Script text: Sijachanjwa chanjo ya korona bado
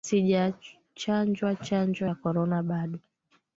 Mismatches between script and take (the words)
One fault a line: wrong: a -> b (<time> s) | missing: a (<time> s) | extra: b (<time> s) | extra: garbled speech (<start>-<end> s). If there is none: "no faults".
no faults